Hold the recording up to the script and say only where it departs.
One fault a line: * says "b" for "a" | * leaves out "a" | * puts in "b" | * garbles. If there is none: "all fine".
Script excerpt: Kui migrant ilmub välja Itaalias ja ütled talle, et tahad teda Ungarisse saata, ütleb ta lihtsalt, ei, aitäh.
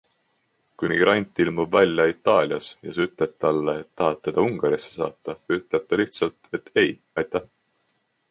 * puts in "sa"
* puts in "et"